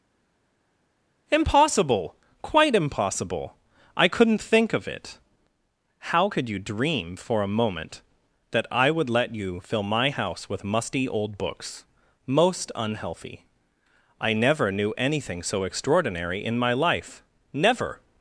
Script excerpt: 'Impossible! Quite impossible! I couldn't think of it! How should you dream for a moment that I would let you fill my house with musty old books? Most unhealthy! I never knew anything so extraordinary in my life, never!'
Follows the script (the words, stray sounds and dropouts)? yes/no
no